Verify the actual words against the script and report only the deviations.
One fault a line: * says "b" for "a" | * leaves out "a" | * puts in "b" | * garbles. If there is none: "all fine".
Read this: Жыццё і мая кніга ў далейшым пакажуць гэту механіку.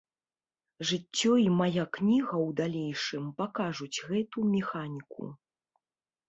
all fine